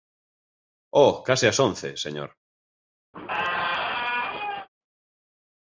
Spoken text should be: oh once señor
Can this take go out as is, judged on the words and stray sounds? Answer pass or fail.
fail